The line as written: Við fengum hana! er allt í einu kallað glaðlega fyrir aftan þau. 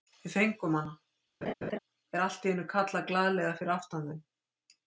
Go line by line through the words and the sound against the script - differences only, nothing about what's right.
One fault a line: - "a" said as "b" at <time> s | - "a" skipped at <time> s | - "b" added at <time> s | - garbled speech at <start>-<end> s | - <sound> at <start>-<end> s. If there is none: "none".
- laugh at 1.4-1.8 s